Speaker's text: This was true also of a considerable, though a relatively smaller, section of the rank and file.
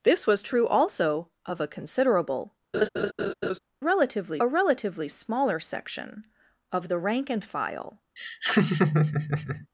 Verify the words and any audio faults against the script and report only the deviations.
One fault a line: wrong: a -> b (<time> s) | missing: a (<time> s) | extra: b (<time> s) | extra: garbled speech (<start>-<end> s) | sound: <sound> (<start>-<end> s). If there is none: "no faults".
sound: laugh (2.7-3.6 s)
wrong: though -> relatively (3.8 s)
sound: laugh (8.2-9.7 s)